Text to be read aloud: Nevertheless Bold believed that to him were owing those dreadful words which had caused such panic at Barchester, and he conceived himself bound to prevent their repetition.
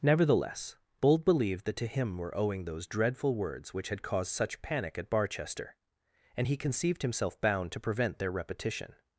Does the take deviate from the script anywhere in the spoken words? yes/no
no